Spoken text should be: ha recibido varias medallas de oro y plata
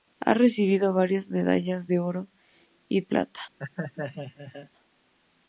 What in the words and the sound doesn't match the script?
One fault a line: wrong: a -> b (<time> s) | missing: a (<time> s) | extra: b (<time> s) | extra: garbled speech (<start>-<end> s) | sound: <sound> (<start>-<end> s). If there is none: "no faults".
sound: laugh (3.6-4.7 s)